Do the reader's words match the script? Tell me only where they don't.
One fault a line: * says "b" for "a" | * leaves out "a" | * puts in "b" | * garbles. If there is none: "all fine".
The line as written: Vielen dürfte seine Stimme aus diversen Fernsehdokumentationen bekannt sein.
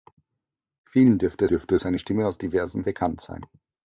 * puts in "dürfte"
* leaves out "Fernsehdokumentationen"